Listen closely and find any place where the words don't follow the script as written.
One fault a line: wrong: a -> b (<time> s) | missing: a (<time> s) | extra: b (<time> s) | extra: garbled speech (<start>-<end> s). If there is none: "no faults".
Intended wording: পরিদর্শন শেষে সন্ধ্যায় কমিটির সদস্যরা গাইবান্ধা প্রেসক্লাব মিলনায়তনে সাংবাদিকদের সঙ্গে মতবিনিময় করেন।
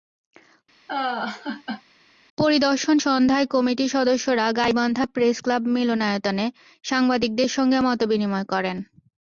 missing: শেষে (3.0 s)